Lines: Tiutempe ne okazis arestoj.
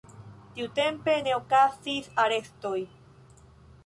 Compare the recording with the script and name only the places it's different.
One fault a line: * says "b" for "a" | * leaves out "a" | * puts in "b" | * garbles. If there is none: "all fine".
all fine